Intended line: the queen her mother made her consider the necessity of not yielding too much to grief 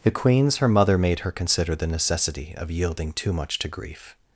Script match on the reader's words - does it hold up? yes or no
no